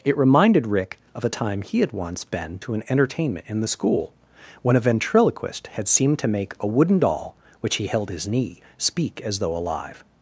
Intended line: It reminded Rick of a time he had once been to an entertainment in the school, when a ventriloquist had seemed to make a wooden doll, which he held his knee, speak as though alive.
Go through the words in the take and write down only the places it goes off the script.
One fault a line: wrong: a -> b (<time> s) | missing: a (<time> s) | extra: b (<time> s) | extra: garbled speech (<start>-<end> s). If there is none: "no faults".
no faults